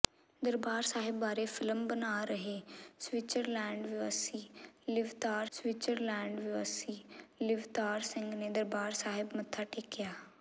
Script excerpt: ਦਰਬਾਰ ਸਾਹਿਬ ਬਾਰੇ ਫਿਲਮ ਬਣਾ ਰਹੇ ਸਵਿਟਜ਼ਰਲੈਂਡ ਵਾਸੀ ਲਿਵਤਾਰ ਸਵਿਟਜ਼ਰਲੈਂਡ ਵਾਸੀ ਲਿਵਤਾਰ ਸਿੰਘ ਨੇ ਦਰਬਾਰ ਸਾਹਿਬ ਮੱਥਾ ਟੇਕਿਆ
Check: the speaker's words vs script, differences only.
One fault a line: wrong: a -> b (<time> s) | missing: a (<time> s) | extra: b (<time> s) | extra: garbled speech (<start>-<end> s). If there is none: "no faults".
no faults